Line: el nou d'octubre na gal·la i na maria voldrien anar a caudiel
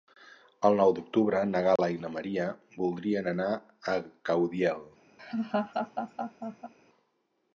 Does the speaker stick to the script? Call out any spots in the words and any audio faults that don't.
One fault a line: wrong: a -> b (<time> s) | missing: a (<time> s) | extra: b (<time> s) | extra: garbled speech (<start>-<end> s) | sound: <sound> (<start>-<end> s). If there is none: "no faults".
sound: dropout (1.8-1.8 s)
sound: laugh (5.2-6.7 s)